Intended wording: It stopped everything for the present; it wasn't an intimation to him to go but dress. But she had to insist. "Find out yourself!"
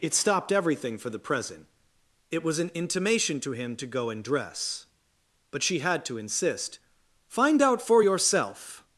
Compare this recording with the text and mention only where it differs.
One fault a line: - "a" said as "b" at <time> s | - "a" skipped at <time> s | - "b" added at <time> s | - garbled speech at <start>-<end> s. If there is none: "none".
- "wasn't" said as "was" at 2.4 s
- "but" said as "and" at 4.1 s
- "for" added at 7.8 s